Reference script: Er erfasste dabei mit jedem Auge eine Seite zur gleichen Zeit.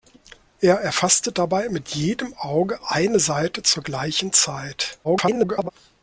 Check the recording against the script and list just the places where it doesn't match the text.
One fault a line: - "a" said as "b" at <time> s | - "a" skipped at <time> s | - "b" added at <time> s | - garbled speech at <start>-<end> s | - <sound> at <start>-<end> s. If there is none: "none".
- garbled speech at 5.0-5.7 s